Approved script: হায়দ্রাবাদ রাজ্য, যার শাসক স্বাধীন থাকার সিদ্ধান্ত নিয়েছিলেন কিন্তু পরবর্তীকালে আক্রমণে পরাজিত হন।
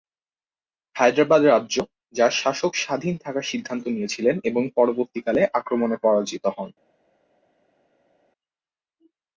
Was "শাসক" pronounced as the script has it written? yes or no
yes